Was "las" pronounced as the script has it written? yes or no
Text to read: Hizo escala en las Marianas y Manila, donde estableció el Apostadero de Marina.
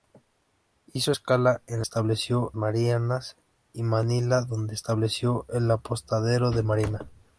no